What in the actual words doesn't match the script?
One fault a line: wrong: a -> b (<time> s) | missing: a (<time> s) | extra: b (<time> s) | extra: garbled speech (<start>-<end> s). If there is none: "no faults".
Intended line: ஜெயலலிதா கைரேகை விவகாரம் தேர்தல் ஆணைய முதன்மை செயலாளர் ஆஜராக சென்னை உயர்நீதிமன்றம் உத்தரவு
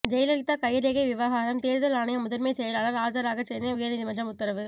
no faults